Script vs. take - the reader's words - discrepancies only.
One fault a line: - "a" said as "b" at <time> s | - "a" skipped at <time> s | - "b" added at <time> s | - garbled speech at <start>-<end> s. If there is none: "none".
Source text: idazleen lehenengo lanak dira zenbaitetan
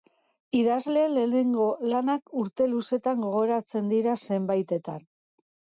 - "urte luzetan gogoratzen" added at 2.5 s